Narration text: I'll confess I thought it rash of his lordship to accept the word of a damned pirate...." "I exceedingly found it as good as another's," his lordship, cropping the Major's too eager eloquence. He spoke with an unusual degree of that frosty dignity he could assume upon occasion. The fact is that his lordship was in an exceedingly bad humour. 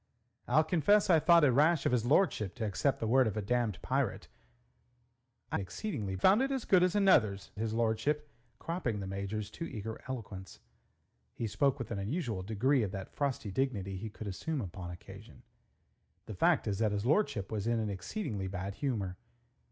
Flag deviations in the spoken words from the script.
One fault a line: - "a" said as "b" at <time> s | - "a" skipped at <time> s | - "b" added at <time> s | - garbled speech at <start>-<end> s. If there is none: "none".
none